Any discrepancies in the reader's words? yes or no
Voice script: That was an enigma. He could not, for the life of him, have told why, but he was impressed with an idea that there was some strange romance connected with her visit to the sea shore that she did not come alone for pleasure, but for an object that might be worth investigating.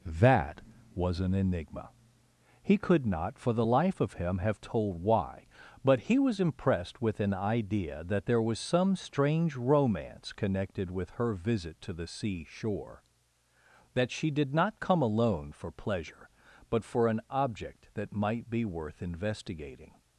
no